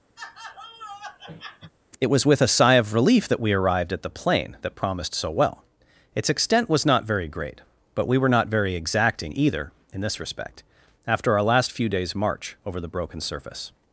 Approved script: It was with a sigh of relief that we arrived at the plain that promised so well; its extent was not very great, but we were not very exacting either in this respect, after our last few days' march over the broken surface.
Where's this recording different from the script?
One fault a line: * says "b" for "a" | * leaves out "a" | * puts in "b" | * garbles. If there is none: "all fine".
all fine